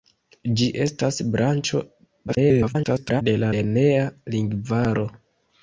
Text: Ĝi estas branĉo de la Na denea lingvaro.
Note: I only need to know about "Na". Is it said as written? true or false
false